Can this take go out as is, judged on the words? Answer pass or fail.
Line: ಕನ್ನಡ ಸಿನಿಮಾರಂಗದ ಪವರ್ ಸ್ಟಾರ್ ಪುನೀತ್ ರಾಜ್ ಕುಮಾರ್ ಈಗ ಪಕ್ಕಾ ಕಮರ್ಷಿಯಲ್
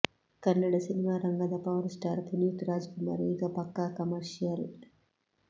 pass